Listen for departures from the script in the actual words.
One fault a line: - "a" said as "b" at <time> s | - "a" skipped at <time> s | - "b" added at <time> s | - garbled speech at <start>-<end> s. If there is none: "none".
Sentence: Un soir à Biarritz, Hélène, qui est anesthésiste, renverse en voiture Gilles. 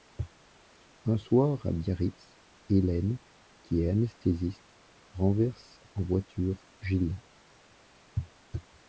none